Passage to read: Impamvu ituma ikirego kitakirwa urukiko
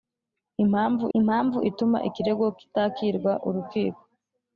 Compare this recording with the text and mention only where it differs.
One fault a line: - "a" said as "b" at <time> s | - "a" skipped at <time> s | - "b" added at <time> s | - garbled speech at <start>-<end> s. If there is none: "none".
- "impamvu" added at 1.2 s